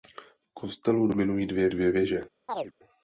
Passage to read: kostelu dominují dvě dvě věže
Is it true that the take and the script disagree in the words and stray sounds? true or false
true